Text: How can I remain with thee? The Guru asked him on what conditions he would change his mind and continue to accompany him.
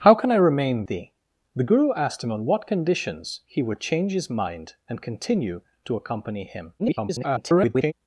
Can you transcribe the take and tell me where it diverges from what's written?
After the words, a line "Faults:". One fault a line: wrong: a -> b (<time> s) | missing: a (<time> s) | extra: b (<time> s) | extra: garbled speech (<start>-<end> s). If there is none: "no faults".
How can I remain thee? The Guru asked him on what conditions he would change his mind and continue to accompany him. [garbled]
Faults:
missing: with (0.9 s)
extra: garbled speech (6.8-7.9 s)